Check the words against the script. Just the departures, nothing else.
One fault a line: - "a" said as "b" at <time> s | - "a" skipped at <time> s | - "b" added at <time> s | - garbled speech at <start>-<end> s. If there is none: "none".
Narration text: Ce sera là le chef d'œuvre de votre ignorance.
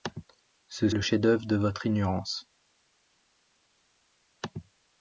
- "sera là" skipped at 0.9 s